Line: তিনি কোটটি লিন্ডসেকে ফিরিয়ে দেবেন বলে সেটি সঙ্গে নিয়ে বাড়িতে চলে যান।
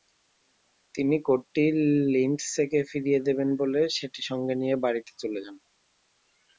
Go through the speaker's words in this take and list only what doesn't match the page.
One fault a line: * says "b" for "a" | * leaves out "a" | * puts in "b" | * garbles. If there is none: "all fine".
all fine